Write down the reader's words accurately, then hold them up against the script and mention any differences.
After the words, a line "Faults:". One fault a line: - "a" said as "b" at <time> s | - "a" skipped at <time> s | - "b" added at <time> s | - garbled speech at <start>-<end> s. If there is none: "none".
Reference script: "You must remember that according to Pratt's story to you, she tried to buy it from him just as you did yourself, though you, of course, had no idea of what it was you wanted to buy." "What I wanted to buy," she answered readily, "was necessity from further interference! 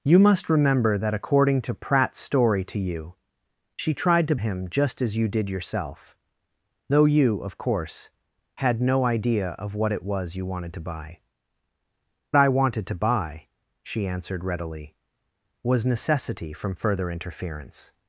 "You must remember that according to Pratt's story to you, she tried to him just as you did yourself, though you, of course, had no idea of what it was you wanted to buy." "I wanted to buy," she answered readily, "was necessity from further interference!
Faults:
- "buy it from" skipped at 4.3 s
- "What" skipped at 11.2 s